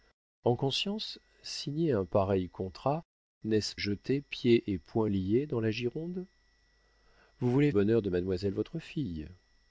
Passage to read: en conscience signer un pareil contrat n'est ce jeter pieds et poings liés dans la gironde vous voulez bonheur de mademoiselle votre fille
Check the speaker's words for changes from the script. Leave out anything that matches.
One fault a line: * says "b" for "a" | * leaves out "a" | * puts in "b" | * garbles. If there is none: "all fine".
all fine